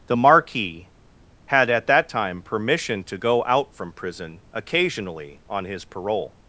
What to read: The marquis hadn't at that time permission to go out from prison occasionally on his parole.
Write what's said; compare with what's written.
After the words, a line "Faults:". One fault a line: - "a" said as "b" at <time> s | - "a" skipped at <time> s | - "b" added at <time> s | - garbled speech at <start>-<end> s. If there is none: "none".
The marquis had at that time permission to go out from prison occasionally on his parole.
Faults:
- "hadn't" said as "had" at 1.5 s